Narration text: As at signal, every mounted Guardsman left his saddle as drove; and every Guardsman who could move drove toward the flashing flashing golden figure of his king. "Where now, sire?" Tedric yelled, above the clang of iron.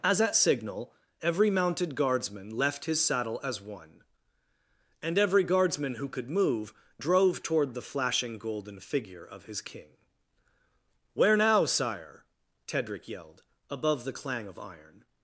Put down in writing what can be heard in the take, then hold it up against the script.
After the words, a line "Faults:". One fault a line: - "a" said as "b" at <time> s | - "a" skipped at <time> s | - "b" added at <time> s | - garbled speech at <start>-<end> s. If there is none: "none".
As at signal, every mounted Guardsman left his saddle as one; and every Guardsman who could move drove toward the flashing golden figure of his king. "Where now, sire?" Tedric yelled, above the clang of iron.
Faults:
- "drove" said as "one" at 3.6 s
- "flashing" skipped at 8.4 s